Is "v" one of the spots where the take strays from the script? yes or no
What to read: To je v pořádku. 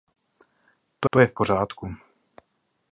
no